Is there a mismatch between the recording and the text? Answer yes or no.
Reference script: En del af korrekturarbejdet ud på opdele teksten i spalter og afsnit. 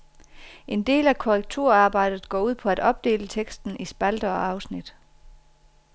yes